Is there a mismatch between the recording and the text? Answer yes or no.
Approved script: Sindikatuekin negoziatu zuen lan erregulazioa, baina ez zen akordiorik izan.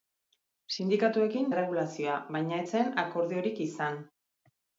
yes